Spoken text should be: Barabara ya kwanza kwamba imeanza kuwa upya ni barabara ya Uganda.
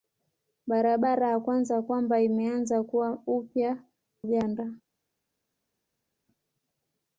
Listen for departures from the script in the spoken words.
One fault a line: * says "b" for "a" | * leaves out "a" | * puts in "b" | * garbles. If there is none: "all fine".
* leaves out "ni barabara ya"